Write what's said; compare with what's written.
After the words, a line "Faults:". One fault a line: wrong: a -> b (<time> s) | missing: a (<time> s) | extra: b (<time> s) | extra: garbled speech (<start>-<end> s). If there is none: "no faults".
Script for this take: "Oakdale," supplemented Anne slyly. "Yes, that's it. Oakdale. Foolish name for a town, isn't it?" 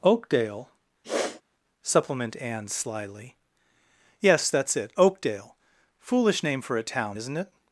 "Oakdale," supplement Anne slyly. "Yes, that's it. Oakdale. Foolish name for a town, isn't it?"
Faults:
wrong: supplemented -> supplement (1.8 s)